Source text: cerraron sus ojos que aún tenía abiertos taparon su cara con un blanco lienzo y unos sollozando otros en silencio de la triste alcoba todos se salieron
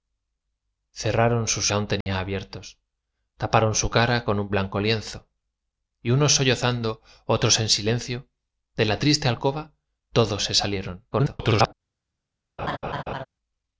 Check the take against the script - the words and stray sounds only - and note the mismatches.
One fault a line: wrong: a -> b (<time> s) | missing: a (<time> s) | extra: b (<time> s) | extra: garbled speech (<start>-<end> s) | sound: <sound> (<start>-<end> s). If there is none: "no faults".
missing: ojos que (1.7 s)
sound: dropout (2.0-2.1 s)
extra: garbled speech (11.1-11.7 s)
sound: laugh (12.6-13.3 s)